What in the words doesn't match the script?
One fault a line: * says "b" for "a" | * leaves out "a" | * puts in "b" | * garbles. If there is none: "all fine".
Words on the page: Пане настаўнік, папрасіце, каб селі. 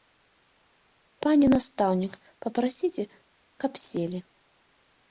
all fine